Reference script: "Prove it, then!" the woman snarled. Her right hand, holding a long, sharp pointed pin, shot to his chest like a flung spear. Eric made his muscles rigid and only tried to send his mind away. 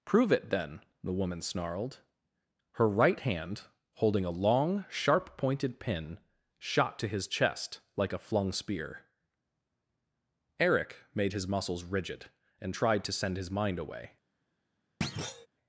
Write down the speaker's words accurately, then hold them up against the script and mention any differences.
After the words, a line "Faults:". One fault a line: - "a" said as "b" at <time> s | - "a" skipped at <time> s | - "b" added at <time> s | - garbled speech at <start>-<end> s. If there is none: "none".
"Prove it, then!" the woman snarled. Her right hand, holding a long, sharp pointed pin, shot to his chest like a flung spear. Eric made his muscles rigid and tried to send his mind away.
Faults:
- "only" skipped at 12.7 s